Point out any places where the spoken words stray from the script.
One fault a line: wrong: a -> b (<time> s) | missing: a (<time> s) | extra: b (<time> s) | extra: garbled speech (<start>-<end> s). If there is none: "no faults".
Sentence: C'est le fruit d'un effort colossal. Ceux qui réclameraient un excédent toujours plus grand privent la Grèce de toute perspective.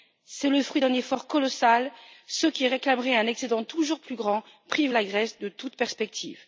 no faults